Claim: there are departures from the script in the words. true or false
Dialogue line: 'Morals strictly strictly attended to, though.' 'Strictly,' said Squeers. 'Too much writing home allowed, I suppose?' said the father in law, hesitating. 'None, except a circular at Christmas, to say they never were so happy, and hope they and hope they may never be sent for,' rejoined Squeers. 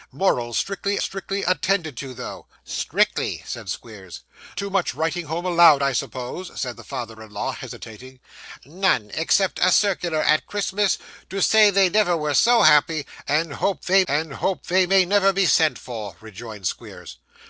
false